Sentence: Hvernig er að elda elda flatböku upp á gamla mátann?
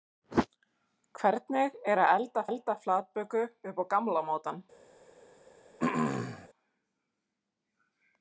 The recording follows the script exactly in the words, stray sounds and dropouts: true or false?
false